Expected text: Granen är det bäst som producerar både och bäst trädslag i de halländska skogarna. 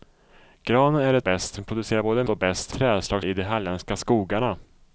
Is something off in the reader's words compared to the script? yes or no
no